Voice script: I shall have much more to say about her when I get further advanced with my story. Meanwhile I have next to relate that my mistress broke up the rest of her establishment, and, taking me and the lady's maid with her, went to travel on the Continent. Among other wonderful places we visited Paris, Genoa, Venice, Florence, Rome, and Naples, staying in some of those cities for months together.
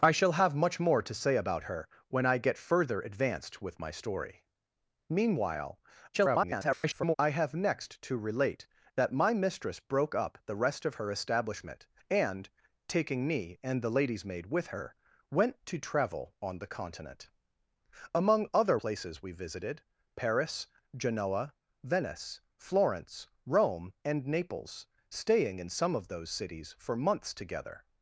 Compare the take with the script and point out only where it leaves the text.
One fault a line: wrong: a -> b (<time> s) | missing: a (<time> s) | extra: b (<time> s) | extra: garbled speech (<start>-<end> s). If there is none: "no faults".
extra: garbled speech (6.1-7.1 s)
missing: wonderful (18.8 s)